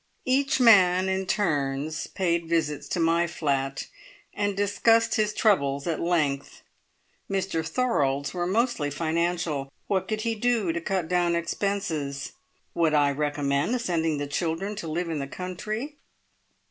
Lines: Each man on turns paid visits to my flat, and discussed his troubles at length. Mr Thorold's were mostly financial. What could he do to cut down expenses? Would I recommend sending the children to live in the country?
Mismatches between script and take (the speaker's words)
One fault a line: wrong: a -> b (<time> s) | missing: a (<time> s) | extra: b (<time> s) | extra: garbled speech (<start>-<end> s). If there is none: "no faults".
wrong: on -> in (1.1 s)